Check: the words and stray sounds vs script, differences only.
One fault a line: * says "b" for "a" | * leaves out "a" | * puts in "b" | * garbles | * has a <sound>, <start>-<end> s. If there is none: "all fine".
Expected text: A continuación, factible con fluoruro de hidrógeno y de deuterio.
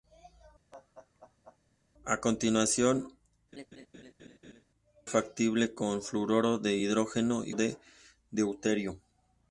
* has a laugh, 0.7-1.6 s
* has a laugh, 3.5-4.6 s